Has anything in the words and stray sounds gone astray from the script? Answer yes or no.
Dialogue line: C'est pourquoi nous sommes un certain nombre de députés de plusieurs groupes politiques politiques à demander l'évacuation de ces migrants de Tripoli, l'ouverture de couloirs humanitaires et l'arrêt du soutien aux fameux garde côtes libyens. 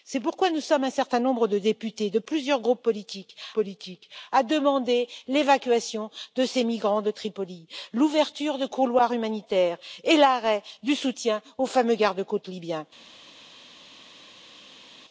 no